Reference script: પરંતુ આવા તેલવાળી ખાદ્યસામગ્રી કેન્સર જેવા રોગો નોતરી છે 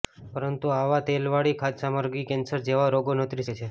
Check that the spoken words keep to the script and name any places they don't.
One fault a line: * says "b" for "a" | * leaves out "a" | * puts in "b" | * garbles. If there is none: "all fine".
all fine